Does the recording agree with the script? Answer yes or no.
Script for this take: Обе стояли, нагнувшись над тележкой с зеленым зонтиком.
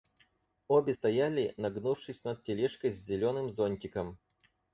yes